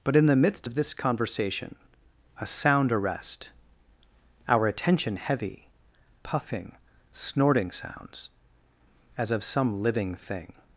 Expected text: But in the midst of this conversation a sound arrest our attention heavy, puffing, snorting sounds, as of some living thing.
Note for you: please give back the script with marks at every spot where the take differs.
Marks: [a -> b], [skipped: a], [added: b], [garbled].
But in the midst of this conversation a sound arrest our attention heavy, puffing, snorting sounds, as of some living thing.